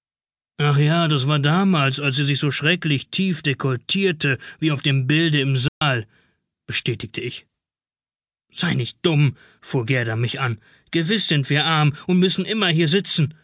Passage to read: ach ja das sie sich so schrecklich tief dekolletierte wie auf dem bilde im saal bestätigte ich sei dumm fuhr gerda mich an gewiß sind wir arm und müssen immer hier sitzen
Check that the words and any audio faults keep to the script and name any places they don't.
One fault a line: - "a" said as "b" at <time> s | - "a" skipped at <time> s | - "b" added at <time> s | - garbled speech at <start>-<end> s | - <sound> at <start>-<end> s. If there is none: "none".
- "war damals als" added at 1.3 s
- dropout at 5.7-5.8 s
- "nicht" added at 8.7 s